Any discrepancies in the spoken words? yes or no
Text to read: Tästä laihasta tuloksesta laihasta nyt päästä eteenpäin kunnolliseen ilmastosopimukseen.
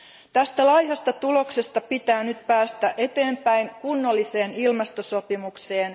yes